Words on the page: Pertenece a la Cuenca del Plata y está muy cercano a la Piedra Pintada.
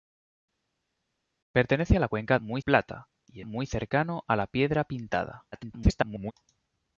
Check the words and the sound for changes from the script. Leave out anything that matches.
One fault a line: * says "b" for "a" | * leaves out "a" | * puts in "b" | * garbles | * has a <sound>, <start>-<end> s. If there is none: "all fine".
* says "muy" for "del"
* leaves out "está"
* garbles